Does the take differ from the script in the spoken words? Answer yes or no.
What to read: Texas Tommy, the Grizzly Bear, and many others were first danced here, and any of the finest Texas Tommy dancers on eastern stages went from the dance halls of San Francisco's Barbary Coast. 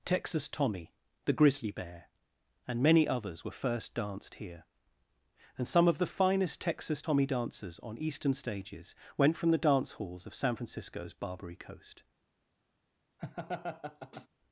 yes